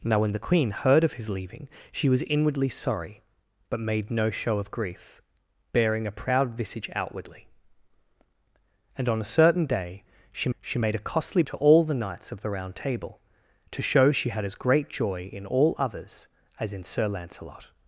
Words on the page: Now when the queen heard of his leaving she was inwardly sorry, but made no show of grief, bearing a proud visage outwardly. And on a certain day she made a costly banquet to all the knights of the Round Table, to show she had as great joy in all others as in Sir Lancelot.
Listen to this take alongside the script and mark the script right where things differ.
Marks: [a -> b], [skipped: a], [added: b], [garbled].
Now when the queen heard of his leaving she was inwardly sorry, but made no show of grief, bearing a proud visage outwardly. And on a certain day she [added: she] made a costly [skipped: banquet] to all the knights of the Round Table, to show she had as great joy in all others as in Sir Lancelot.